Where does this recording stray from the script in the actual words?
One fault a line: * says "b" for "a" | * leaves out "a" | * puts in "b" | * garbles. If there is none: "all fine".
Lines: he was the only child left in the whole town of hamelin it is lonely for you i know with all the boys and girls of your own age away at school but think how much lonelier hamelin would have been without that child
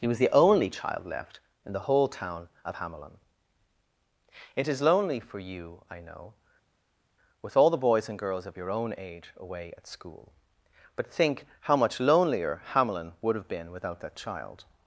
all fine